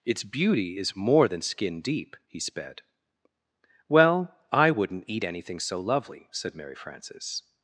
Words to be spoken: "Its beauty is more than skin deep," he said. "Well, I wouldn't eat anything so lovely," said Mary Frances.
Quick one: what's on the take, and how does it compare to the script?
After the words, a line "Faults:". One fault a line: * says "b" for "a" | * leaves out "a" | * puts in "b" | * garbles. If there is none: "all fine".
"Its beauty is more than skin deep," he sped. "Well, I wouldn't eat anything so lovely," said Mary Frances.
Faults:
* says "sped" for "said"